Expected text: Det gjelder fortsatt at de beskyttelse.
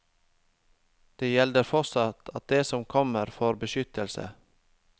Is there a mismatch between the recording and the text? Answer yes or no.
yes